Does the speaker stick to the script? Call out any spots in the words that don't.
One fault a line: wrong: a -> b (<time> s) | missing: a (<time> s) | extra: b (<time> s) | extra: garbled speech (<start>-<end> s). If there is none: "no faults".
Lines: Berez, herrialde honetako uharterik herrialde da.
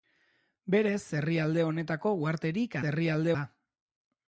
no faults